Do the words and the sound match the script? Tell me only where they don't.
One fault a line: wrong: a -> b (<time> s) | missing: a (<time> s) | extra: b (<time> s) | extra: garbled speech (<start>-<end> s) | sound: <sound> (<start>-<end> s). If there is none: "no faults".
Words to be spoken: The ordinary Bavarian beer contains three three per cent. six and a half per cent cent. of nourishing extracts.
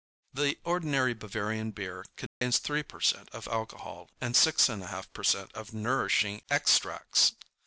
sound: dropout (2.3-2.4 s)
missing: three (2.8 s)
extra: of alcohol and (3.4 s)
missing: cent (5.5 s)